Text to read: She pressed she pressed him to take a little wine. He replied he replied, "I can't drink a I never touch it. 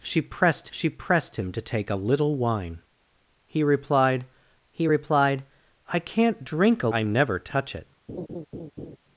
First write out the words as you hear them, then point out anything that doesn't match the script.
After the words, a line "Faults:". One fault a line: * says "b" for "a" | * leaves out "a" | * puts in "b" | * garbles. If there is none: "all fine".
She pressed she pressed him to take a little wine. He replied he replied, "I can't drink a I never touch it.
Faults:
all fine